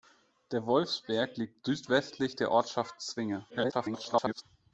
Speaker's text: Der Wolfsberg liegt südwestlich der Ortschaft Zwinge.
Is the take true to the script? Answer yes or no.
no